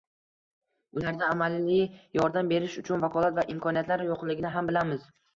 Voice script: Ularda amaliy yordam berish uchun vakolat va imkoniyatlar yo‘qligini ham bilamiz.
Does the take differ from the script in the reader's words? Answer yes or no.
no